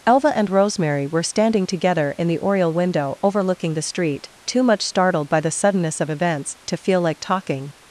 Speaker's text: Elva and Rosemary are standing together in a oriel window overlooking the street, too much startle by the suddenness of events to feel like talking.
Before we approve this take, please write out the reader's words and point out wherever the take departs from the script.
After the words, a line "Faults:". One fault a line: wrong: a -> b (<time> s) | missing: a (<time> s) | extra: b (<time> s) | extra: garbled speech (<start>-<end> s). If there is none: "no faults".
Elva and Rosemary were standing together in the oriel window overlooking the street, too much startled by the suddenness of events to feel like talking.
Faults:
wrong: are -> were (1.1 s)
wrong: a -> the (2.3 s)
wrong: startle -> startled (4.8 s)